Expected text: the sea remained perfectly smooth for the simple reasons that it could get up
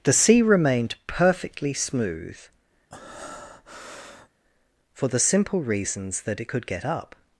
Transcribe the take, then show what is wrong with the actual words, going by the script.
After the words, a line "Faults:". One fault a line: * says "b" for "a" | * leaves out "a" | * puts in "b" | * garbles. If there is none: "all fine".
the sea remained perfectly smooth for the simple reasons that it could get up
Faults:
all fine